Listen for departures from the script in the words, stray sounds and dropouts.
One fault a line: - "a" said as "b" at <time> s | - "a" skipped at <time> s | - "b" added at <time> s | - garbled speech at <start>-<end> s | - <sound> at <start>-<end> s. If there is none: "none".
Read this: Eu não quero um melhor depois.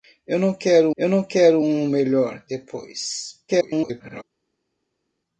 - "eu não quero" added at 0.9 s
- garbled speech at 3.5-4.2 s